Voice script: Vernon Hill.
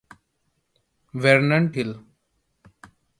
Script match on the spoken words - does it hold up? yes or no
yes